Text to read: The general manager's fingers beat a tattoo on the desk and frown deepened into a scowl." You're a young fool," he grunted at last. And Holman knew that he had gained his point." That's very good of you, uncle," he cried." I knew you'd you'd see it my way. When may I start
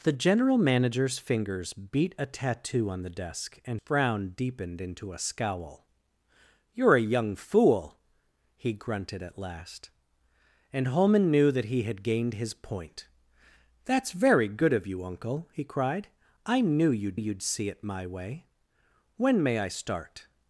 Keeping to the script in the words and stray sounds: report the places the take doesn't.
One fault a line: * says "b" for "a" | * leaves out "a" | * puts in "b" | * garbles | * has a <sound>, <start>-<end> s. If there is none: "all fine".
all fine